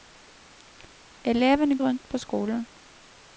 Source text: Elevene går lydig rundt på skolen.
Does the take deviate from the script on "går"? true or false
true